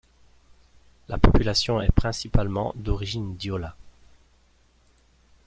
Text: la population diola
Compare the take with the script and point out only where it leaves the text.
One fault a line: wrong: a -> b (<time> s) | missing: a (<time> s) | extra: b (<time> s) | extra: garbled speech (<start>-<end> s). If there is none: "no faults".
extra: est principalement d'origine (1.8 s)